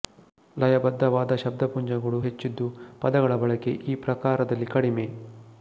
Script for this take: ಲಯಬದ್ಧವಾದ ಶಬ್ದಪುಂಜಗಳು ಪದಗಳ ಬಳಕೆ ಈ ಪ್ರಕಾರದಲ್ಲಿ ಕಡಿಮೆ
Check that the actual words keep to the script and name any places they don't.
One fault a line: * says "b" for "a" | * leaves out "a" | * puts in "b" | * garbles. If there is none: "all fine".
* puts in "ಹೆಚ್ಚಿದ್ದು"